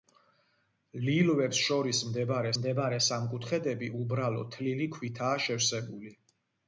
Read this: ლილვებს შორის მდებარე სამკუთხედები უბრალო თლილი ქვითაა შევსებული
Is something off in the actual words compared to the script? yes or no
yes